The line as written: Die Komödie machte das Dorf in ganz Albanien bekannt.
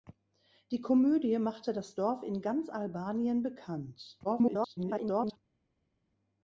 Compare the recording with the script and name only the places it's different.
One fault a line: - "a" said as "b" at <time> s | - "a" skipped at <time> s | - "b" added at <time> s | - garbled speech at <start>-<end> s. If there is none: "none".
- garbled speech at 4.2-5.4 s